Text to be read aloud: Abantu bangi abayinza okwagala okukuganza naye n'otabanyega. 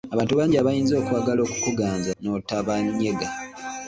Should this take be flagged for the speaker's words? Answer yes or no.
yes